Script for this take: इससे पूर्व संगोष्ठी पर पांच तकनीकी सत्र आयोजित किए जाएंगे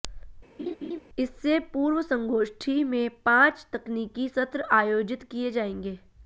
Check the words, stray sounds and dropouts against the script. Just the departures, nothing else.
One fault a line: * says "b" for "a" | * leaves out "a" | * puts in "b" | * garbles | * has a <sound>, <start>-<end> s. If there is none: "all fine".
* has a laugh, 0.6-1.0 s
* says "में" for "पर"